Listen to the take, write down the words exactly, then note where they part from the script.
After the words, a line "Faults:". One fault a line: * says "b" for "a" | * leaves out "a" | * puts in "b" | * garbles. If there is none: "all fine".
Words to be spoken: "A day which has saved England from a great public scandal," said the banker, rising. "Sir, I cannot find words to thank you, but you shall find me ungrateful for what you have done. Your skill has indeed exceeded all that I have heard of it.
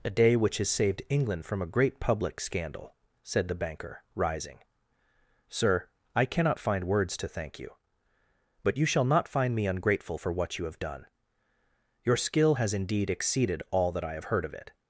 "A day which has saved England from a great public scandal," said the banker, rising. "Sir, I cannot find words to thank you, but you shall not find me ungrateful for what you have done. Your skill has indeed exceeded all that I have heard of it.
Faults:
* puts in "not"